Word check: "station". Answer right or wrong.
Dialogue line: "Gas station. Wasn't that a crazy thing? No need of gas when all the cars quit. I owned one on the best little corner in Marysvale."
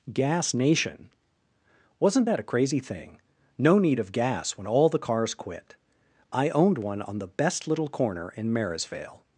wrong